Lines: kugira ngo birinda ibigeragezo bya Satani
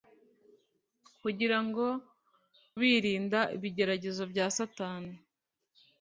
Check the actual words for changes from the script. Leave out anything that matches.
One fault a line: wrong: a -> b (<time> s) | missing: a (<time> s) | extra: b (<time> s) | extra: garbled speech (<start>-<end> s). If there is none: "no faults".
no faults